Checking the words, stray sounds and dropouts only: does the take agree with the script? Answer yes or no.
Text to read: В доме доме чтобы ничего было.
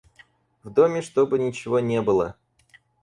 no